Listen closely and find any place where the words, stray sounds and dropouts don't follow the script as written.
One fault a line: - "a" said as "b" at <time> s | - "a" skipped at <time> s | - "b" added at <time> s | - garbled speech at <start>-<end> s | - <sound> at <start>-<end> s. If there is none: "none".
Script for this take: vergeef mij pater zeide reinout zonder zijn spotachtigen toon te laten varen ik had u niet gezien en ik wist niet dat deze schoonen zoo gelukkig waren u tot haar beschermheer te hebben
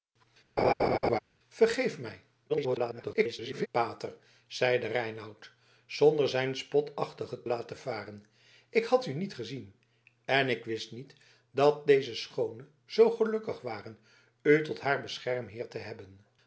- laugh at 0.6-1.2 s
- garbled speech at 2.5-3.7 s
- "toon te" skipped at 7.4 s